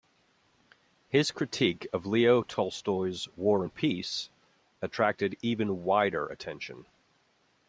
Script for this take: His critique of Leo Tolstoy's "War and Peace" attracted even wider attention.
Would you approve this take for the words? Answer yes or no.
yes